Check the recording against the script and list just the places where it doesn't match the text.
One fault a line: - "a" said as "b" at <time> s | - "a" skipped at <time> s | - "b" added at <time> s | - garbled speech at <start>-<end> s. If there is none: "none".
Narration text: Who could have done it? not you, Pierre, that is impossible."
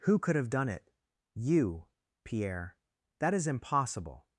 - "not" skipped at 0.9 s